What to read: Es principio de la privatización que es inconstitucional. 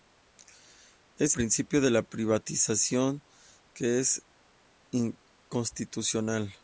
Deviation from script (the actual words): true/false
false